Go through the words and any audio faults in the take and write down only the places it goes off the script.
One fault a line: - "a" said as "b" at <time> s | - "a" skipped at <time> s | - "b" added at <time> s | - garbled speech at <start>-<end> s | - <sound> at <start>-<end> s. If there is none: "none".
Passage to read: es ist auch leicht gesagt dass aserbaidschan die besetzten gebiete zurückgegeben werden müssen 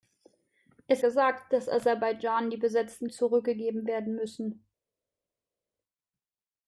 - "ist auch leicht" skipped at 1.0 s
- "gebiete" skipped at 3.1 s